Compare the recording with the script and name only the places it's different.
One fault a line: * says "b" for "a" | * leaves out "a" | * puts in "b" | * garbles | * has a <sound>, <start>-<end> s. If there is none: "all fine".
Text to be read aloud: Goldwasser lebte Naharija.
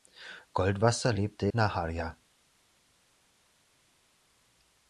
all fine